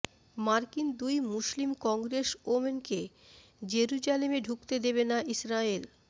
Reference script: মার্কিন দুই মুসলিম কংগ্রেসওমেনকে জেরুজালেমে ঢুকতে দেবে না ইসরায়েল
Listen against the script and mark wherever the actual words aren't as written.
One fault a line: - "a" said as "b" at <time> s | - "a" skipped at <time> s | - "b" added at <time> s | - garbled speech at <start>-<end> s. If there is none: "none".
none